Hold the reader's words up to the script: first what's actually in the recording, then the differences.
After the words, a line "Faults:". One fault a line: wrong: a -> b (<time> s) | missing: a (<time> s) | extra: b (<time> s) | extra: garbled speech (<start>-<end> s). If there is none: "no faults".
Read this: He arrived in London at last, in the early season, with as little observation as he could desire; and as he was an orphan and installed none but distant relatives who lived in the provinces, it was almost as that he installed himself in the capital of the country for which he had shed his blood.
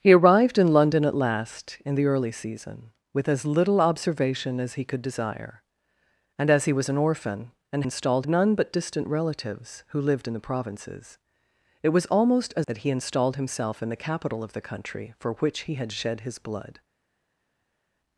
He arrived in London at last, in the early season, with as little observation as he could desire; and as he was an orphan and installed none but distant relatives who lived in the provinces, it was almost as that he installed himself in the capital of the country for which he had shed his blood.
Faults:
no faults